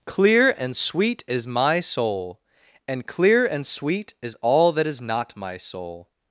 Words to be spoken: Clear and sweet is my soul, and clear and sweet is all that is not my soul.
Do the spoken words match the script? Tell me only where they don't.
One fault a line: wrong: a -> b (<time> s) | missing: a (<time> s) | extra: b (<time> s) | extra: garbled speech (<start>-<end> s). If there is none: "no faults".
no faults